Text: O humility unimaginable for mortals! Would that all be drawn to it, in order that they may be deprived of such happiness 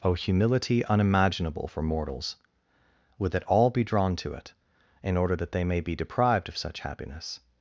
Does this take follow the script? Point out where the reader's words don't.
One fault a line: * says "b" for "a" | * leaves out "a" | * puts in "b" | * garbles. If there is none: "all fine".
all fine